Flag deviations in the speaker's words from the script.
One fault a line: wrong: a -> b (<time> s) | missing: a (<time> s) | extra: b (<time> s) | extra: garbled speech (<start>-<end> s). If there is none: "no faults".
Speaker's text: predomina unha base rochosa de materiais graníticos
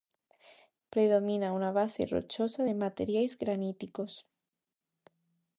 no faults